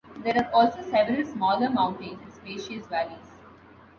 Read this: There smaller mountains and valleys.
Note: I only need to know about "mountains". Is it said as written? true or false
true